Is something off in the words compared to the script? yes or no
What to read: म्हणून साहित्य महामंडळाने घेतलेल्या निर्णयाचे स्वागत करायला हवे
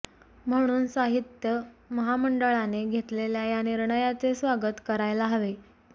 yes